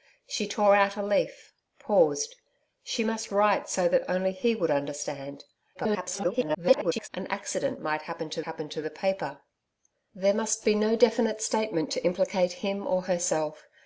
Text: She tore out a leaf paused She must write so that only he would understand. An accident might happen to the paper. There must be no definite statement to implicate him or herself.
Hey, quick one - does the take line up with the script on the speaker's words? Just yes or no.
no